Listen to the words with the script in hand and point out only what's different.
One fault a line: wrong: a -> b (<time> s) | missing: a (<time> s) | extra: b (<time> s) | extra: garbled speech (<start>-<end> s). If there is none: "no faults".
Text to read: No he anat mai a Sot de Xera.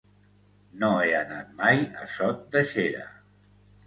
no faults